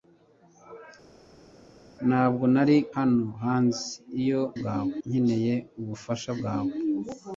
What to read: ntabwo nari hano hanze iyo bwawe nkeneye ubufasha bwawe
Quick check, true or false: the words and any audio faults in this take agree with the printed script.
true